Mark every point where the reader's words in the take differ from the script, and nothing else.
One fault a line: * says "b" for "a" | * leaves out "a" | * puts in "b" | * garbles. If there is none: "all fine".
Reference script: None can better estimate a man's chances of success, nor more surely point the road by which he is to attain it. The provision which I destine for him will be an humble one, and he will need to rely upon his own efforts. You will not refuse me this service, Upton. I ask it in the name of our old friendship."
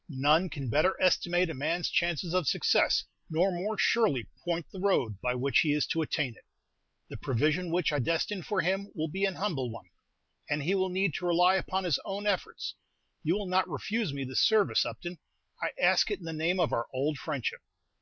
all fine